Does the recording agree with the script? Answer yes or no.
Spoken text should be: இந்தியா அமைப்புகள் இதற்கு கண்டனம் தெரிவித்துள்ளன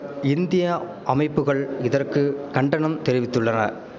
yes